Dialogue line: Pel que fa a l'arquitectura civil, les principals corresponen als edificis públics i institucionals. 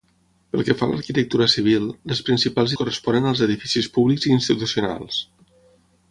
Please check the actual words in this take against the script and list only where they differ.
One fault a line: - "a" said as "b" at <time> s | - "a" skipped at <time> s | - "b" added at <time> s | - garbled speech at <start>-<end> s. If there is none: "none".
none